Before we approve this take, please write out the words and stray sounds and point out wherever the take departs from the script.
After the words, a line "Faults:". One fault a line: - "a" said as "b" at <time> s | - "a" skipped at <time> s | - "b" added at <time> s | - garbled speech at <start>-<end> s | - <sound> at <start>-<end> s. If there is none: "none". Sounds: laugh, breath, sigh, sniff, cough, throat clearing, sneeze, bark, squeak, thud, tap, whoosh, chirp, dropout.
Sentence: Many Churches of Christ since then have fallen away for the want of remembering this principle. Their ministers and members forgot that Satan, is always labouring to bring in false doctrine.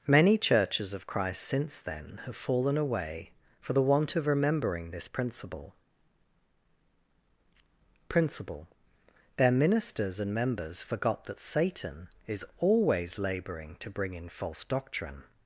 Many Churches of Christ since then have fallen away for the want of remembering this principle principle. Their ministers and members forgot that Satan, is always labouring to bring in false doctrine.
Faults:
- "principle" added at 8.1 s